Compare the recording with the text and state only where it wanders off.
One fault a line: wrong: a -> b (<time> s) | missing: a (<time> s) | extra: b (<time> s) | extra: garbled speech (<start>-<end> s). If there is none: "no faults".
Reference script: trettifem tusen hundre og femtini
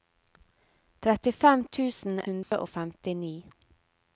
no faults